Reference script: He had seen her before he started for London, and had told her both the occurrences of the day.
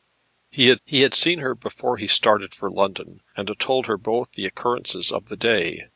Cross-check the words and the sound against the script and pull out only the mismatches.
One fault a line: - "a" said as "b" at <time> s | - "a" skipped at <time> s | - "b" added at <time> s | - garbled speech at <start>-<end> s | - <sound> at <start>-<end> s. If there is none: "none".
- "he had" added at 0.8 s